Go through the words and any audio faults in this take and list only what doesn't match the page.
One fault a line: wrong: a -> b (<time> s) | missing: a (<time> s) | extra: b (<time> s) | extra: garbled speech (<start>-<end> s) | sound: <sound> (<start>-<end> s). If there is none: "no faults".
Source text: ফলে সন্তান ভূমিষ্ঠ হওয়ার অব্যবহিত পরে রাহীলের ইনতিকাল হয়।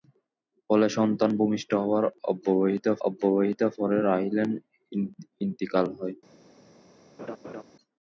extra: অব্যবহিত (3.1 s)
sound: laugh (7.2-7.6 s)